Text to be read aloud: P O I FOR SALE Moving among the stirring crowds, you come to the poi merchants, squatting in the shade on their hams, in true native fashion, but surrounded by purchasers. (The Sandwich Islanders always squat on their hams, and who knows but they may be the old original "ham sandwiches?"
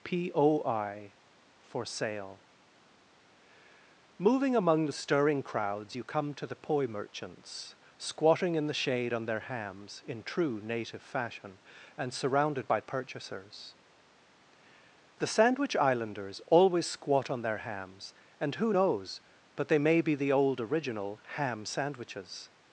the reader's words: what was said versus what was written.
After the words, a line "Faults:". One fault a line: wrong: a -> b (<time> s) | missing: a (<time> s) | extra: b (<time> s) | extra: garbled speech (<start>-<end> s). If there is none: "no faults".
P O I FOR SALE Moving among the stirring crowds, you come to the poi merchants, squatting in the shade on their hams, in true native fashion, and surrounded by purchasers. (The Sandwich Islanders always squat on their hams, and who knows but they may be the old original "ham sandwiches?"
Faults:
wrong: but -> and (12.0 s)